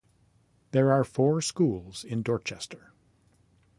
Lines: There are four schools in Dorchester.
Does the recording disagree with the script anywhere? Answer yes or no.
no